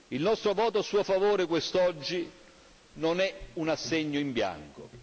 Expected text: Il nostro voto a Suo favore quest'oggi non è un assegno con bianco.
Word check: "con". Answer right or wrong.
wrong